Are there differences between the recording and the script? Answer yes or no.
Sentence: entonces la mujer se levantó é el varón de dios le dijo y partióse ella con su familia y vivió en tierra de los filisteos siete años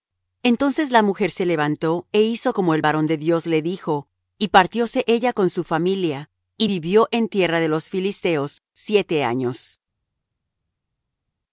yes